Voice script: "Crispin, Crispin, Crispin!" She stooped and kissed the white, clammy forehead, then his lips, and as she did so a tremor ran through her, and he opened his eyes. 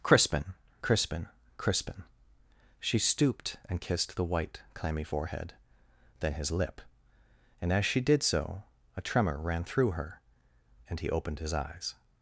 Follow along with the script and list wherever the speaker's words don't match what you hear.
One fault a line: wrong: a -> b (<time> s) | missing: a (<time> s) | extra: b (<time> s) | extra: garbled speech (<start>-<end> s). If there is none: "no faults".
wrong: lips -> lip (6.5 s)